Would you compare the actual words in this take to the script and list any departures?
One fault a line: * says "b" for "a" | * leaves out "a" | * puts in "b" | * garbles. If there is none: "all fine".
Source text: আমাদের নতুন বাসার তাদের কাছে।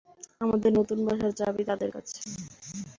* puts in "চাবি"